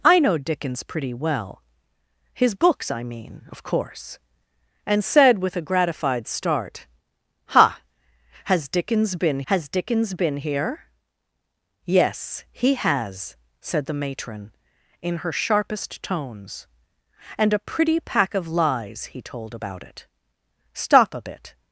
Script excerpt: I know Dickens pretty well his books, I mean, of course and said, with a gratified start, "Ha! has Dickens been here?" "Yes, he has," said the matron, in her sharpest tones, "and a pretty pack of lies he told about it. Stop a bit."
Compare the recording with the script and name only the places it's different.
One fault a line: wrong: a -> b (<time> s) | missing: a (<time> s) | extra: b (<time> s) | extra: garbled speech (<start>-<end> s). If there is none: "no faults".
extra: has Dickens been (9.5 s)